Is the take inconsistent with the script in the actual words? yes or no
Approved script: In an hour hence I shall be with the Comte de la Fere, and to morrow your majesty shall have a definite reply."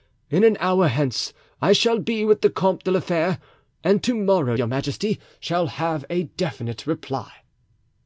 no